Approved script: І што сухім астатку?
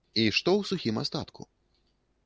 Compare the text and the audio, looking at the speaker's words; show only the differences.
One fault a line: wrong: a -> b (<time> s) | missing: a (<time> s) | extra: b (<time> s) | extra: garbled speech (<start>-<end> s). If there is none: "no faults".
extra: ў (0.6 s)